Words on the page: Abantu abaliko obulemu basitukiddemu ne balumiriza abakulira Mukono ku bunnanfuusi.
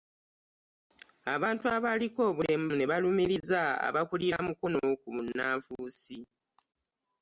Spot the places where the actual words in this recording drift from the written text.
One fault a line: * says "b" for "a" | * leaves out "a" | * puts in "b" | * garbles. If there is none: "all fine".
* leaves out "basitukiddemu"